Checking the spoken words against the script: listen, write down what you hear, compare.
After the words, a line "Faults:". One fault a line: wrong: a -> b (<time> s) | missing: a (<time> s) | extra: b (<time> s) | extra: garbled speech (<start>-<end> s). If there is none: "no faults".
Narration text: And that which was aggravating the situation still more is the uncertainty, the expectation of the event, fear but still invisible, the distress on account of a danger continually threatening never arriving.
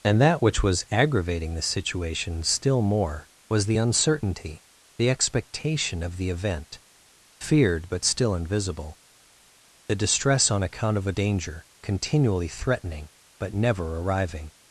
And that which was aggravating the situation still more was the uncertainty, the expectation of the event, feared but still invisible, the distress on account of a danger continually threatening but never arriving.
Faults:
wrong: is -> was (3.5 s)
wrong: fear -> feared (7.4 s)
extra: but (13.4 s)